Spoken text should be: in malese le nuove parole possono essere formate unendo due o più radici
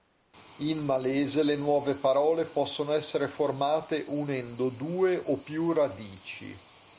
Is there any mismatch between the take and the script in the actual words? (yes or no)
no